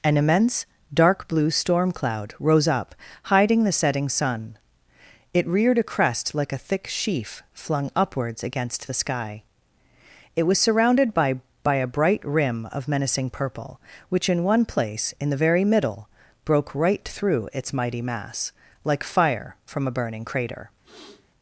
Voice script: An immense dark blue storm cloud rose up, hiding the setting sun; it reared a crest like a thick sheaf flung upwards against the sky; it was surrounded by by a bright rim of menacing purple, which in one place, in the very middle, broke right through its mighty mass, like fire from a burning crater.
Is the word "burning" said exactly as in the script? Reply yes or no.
yes